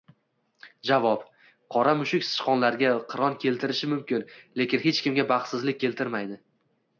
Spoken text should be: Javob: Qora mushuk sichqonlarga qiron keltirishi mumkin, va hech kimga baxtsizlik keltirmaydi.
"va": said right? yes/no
no